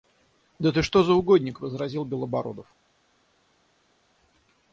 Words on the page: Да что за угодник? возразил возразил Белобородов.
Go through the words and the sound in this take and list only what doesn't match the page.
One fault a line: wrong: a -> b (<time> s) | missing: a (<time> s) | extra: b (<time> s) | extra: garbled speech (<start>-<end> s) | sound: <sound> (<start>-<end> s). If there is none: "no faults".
extra: ты (0.7 s)
missing: возразил (2.0 s)